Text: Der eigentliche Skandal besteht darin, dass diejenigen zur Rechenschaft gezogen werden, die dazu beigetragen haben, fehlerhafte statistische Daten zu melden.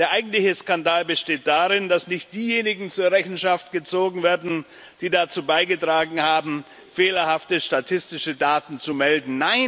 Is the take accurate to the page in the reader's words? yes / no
no